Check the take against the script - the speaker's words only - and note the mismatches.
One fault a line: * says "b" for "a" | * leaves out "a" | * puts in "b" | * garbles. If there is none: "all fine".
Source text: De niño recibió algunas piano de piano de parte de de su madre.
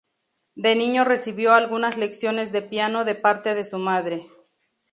* says "lecciones" for "piano"
* leaves out "de"